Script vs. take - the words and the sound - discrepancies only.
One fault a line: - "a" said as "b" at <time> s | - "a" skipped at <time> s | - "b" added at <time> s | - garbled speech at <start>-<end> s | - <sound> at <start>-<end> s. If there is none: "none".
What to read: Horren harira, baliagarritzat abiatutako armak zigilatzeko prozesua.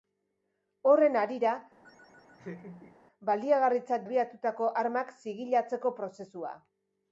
- laugh at 1.8-3.0 s